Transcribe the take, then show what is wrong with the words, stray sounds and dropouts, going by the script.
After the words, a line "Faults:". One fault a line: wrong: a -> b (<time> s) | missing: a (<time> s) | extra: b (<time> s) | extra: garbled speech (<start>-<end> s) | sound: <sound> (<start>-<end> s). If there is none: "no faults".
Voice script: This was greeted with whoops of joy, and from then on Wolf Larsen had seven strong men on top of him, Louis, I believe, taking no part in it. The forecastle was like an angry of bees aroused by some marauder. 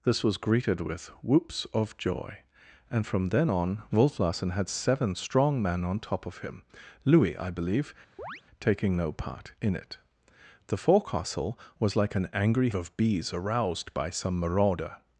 This was greeted with whoops of joy, and from then on Wolf Larsen had seven strong men on top of him, Louis, I believe, taking no part in it. The forecastle was like an angry of bees aroused by some marauder.
Faults:
sound: chirp (8.2-8.4 s)